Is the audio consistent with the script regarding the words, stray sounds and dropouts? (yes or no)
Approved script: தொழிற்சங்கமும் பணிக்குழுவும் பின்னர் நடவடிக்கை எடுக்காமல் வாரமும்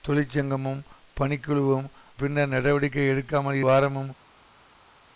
yes